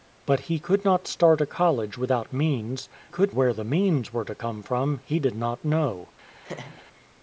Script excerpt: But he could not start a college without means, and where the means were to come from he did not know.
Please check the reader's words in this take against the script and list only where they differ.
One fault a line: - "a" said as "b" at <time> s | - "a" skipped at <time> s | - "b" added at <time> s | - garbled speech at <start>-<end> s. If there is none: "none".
- "and" said as "could" at 3.1 s